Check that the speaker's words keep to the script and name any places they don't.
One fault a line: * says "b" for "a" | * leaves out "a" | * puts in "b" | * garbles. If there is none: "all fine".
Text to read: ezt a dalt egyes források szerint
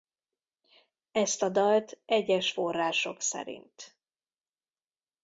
all fine